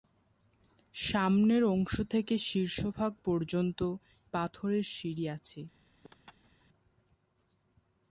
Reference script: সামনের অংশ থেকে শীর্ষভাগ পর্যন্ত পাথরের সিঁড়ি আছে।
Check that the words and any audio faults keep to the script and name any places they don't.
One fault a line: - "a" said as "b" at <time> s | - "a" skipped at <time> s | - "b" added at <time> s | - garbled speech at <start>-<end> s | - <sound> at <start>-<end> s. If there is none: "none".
- laugh at 6.0-6.7 s